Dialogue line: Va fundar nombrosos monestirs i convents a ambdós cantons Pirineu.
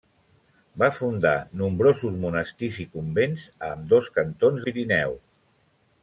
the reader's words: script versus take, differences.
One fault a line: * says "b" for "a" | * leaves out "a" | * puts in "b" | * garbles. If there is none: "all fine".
all fine